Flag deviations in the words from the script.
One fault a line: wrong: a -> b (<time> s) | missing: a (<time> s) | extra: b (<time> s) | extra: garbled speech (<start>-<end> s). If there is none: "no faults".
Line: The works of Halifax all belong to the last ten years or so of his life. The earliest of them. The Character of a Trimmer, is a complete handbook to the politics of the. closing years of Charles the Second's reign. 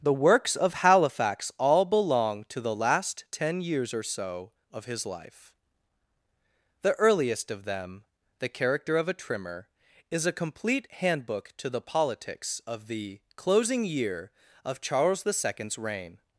wrong: years -> year (13.8 s)